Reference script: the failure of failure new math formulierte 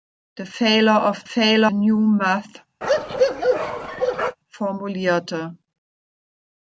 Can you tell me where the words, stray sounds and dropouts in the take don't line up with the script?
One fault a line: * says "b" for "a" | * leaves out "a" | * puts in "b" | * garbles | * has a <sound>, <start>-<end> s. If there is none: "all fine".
* has a bark, 2.8-4.4 s